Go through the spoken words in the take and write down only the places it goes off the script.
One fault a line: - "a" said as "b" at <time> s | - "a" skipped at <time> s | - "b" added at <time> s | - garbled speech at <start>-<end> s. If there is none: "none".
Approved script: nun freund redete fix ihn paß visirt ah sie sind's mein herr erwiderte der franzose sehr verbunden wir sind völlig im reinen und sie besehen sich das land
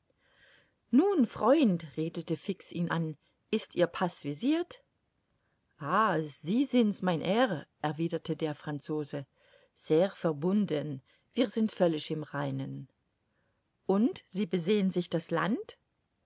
- "an ist ihr" added at 2.9 s